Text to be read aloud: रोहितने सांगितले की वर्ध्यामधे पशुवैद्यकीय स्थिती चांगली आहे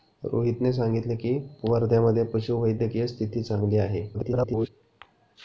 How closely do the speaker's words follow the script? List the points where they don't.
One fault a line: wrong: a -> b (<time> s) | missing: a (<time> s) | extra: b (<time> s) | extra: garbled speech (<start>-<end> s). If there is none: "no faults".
extra: garbled speech (4.1-4.7 s)